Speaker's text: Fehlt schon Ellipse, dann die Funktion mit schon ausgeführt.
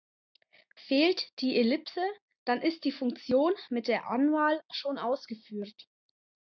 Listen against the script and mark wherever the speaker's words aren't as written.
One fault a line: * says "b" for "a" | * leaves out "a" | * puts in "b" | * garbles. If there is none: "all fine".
* says "die" for "schon"
* puts in "ist"
* puts in "der Anwahl"